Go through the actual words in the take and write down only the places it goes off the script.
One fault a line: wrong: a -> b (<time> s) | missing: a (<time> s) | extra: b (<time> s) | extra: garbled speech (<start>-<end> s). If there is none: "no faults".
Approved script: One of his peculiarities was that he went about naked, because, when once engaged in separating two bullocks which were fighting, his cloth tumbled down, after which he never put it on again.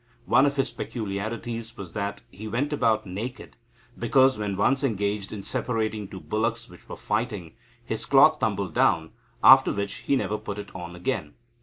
no faults